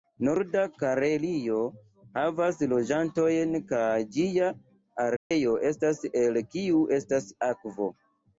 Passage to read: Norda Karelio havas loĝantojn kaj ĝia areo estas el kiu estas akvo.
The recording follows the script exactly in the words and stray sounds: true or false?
false